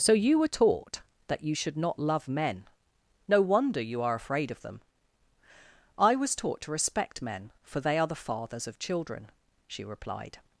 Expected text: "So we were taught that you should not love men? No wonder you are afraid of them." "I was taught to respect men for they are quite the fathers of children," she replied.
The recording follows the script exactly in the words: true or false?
false